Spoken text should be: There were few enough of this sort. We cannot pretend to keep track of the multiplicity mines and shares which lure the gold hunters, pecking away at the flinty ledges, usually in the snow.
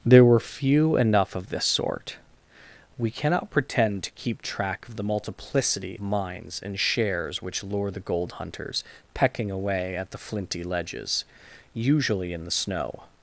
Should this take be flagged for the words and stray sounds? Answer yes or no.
no